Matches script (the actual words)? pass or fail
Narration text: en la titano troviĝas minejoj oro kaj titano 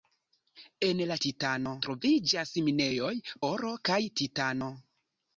pass